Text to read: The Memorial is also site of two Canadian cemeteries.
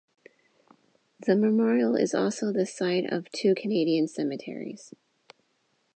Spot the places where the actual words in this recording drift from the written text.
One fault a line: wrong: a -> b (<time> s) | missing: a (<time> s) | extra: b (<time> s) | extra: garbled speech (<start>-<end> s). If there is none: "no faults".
extra: the (2.5 s)